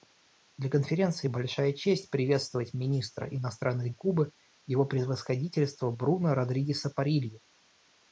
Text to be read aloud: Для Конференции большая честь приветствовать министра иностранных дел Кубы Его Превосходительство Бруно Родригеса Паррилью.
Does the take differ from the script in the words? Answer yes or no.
yes